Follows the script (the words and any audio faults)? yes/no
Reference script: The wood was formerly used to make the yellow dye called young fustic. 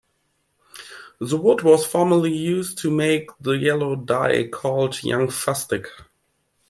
yes